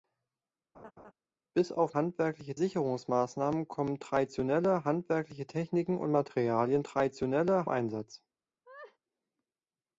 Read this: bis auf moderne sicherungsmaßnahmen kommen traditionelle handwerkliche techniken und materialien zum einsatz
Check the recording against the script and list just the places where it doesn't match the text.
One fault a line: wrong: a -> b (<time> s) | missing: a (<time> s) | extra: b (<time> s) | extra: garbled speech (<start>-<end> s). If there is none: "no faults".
wrong: moderne -> handwerkliche (1.9 s)
wrong: zum -> traditionelle (6.8 s)